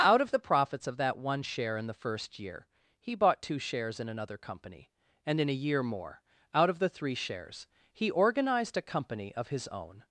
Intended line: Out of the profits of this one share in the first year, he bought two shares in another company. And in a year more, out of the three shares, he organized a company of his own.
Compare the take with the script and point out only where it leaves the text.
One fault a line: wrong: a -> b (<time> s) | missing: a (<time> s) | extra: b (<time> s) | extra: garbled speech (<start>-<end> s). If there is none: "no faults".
wrong: this -> that (1.0 s)